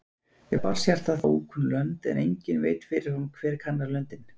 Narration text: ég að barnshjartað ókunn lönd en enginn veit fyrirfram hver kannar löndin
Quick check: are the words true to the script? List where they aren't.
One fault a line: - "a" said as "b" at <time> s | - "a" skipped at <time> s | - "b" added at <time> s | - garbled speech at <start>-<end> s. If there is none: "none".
none